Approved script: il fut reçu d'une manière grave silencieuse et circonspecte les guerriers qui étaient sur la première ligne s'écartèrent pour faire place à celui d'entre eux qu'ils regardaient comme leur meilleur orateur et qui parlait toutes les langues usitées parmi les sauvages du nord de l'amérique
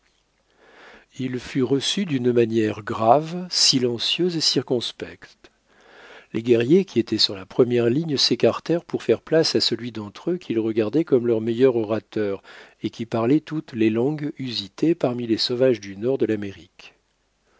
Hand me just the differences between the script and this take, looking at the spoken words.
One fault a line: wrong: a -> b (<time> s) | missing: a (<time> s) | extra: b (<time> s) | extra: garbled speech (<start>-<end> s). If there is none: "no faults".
no faults